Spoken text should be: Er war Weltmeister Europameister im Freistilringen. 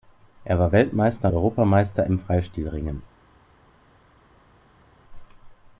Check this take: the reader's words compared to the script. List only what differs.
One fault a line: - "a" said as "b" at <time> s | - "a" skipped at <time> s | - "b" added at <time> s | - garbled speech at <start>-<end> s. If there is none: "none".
none